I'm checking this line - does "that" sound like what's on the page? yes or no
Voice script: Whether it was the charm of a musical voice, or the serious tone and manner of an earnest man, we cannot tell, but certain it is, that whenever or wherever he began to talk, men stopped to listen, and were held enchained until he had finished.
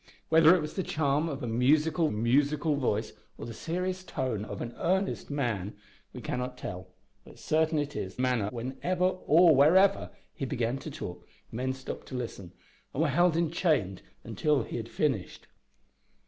no